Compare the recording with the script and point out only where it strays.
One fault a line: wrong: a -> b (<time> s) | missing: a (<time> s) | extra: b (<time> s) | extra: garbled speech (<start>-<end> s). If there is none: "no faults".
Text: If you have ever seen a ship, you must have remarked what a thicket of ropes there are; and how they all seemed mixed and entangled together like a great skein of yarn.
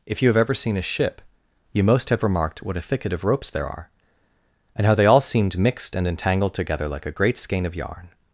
wrong: must -> most (1.8 s)